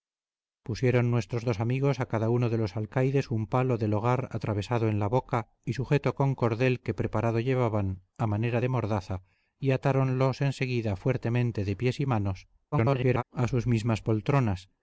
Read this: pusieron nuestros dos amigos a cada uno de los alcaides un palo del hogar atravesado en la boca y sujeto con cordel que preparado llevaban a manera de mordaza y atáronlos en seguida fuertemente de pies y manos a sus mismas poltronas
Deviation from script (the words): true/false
true